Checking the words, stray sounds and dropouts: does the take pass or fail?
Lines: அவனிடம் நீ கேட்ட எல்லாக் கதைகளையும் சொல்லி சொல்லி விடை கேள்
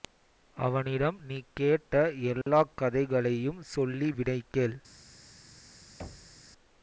fail